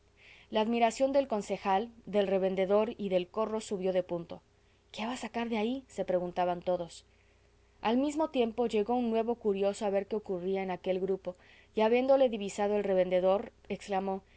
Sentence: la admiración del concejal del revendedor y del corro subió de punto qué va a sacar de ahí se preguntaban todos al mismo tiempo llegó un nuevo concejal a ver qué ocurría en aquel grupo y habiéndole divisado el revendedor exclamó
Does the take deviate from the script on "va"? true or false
false